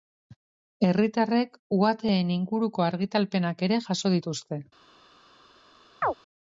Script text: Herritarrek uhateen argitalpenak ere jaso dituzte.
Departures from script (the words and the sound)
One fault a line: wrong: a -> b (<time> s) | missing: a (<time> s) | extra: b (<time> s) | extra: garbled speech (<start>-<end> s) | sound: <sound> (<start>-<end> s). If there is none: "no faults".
extra: inguruko (2.4 s)
sound: chirp (6.0-6.1 s)